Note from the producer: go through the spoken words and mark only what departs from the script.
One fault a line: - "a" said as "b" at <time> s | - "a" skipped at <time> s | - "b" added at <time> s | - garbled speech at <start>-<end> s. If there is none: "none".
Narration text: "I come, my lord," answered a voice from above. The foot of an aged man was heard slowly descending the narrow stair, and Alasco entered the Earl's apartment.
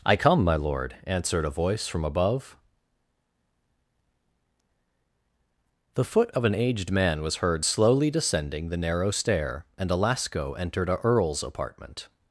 - "the" said as "a" at 10.9 s